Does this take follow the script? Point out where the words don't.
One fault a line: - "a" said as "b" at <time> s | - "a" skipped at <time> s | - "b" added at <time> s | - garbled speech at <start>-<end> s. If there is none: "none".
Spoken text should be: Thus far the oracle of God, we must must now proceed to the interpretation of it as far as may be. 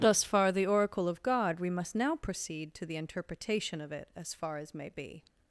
- "must" skipped at 1.9 s